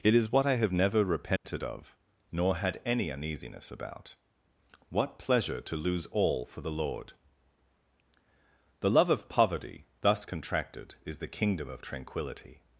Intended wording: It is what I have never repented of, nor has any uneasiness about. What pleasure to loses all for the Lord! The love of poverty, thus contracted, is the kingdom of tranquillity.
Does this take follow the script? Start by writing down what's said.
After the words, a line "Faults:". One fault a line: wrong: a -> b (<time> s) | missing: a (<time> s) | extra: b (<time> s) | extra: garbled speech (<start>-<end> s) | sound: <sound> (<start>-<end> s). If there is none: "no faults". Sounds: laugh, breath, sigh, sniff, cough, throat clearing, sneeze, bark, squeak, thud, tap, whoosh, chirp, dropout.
It is what I have never repented of, nor had any uneasiness about. What pleasure to lose all for the Lord! The love of poverty, thus contracted, is the kingdom of tranquillity.
Faults:
sound: dropout (1.4-1.4 s)
wrong: has -> had (2.5 s)
wrong: loses -> lose (5.8 s)